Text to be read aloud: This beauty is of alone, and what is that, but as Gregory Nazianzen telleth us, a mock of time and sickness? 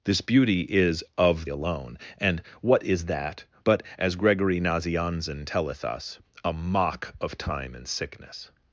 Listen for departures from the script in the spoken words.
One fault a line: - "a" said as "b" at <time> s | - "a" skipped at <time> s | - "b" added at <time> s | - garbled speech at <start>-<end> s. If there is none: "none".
none